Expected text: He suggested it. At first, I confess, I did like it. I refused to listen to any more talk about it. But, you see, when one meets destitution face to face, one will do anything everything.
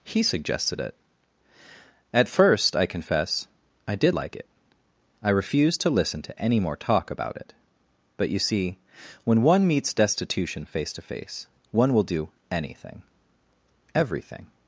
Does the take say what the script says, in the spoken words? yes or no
yes